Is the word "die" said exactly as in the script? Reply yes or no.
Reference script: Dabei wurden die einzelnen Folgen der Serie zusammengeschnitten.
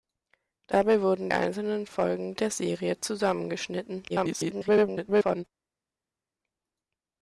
no